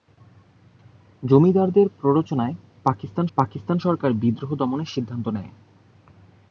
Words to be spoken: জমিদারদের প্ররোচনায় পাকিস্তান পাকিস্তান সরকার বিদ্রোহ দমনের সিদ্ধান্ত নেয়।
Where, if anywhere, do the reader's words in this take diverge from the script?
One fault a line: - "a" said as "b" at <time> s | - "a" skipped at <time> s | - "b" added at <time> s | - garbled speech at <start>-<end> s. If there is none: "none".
none